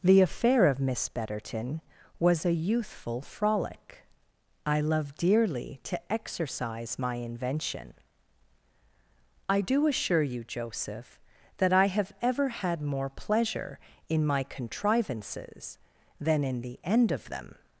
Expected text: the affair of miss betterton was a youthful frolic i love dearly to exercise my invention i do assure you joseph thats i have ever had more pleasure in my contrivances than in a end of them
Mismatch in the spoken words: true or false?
true